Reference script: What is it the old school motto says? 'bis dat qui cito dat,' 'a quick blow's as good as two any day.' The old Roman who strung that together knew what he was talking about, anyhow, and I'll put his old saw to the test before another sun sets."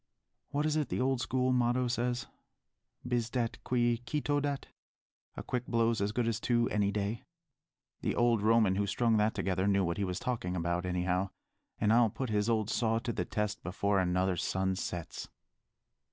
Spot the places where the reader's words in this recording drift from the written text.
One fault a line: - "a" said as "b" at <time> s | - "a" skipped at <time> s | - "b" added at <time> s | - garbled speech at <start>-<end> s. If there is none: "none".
none